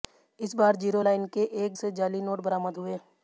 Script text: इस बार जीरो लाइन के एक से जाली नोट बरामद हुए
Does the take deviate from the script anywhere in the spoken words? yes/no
no